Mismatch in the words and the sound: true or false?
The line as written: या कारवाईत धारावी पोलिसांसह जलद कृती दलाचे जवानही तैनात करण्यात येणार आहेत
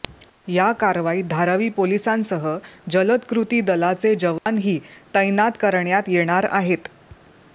true